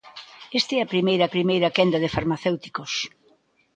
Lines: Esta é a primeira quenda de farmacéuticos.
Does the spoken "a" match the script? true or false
true